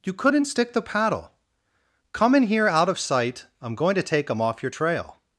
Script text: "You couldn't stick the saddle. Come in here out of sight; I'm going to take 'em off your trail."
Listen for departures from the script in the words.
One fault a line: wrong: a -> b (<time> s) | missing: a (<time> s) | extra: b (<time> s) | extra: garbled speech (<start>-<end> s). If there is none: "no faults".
wrong: saddle -> paddle (0.8 s)